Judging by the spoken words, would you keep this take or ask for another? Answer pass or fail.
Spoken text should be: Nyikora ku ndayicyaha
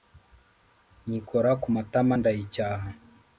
fail